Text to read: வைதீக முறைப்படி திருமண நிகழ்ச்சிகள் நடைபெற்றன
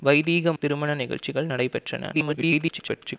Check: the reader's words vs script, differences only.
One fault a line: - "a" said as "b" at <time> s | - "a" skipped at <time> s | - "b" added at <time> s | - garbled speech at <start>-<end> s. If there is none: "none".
- "முறைப்படி" skipped at 0.5 s
- garbled speech at 2.1-3.2 s